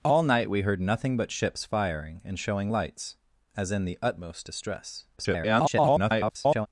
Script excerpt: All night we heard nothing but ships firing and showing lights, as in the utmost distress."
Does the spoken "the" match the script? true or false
true